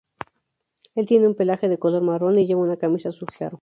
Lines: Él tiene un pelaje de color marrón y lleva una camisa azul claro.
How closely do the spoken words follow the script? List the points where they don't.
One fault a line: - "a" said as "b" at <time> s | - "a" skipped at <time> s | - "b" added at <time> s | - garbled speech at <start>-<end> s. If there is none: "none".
none